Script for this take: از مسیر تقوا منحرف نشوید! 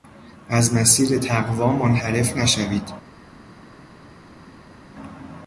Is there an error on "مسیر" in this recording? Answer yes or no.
no